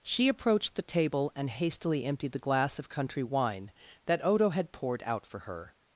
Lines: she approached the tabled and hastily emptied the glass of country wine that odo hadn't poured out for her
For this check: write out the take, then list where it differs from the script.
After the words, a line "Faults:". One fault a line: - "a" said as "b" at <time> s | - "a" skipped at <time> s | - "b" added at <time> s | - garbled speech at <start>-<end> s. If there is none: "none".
she approached the table and hastily emptied the glass of country wine that odo had poured out for her
Faults:
- "tabled" said as "table" at 0.8 s
- "hadn't" said as "had" at 4.5 s